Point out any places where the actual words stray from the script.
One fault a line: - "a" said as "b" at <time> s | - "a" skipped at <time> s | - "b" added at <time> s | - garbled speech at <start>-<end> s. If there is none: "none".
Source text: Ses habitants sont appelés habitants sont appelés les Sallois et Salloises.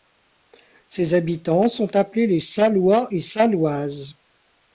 - "habitants sont appelés" skipped at 2.2 s